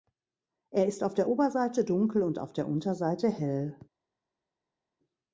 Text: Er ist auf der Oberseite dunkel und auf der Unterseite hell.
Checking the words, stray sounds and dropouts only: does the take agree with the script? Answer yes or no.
yes